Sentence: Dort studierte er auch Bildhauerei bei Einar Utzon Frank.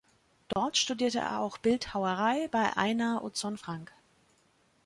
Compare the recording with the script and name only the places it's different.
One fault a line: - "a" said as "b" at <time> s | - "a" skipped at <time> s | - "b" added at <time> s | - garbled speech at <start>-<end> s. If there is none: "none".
none